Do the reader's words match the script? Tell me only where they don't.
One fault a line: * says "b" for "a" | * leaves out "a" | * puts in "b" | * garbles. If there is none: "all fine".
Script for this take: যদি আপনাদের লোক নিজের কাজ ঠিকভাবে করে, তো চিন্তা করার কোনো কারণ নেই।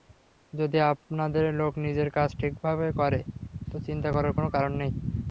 all fine